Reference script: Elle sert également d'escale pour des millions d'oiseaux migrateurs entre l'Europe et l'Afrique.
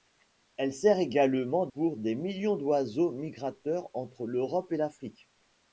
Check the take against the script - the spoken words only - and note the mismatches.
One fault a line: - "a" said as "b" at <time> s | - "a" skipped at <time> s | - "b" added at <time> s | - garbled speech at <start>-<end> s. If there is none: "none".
- "d'escale" skipped at 1.7 s